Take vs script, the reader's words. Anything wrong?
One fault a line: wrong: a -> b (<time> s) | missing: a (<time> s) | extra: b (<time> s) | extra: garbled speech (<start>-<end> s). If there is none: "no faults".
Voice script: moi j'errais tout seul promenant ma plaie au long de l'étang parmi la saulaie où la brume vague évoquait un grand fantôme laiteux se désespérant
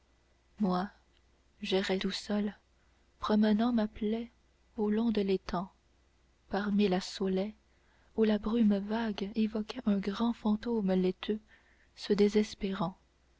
no faults